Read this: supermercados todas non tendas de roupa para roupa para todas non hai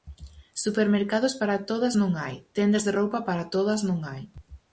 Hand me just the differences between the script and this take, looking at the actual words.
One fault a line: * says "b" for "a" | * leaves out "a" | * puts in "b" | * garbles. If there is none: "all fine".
* puts in "para"
* puts in "hai"
* leaves out "roupa para"